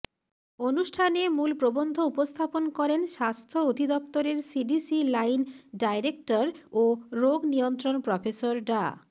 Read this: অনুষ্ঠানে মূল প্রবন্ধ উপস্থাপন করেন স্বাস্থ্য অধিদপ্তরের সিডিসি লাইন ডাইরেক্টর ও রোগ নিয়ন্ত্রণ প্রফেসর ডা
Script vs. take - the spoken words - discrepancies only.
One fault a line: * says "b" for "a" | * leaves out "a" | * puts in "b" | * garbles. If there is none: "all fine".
all fine